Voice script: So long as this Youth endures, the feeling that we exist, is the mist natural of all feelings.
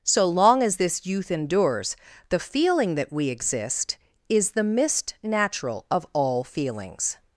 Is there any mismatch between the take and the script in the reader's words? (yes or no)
no